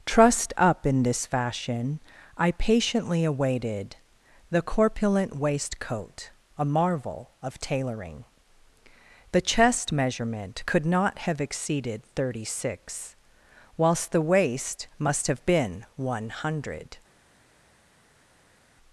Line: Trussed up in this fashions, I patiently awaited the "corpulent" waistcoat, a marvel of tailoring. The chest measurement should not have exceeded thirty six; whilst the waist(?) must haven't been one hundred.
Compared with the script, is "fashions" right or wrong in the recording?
wrong